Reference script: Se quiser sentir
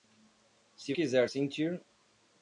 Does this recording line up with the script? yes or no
yes